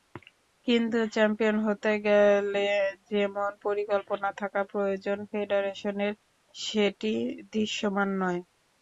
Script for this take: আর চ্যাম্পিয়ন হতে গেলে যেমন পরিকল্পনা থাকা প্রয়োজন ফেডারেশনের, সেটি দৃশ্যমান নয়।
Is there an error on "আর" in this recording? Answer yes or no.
yes